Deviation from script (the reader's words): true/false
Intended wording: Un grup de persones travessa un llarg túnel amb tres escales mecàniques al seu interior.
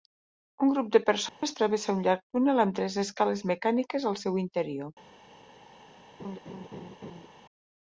false